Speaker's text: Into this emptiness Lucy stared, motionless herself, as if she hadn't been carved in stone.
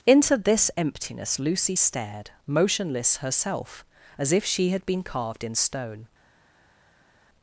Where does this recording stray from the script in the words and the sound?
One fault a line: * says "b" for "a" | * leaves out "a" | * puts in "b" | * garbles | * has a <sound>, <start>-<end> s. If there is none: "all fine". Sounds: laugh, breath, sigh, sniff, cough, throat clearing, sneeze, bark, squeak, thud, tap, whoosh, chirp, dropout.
* says "had" for "hadn't"